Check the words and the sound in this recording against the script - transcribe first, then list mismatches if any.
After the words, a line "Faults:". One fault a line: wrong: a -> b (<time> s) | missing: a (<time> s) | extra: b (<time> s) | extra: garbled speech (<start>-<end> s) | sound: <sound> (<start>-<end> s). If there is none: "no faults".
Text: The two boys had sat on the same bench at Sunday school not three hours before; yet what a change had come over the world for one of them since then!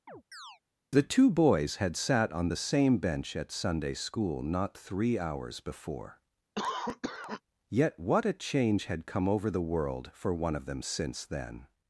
The two boys had sat on the same bench at Sunday school not three hours before; yet what a change had come over the world for one of them since then!
Faults:
sound: chirp (0.1-0.6 s)
sound: cough (6.6-7.4 s)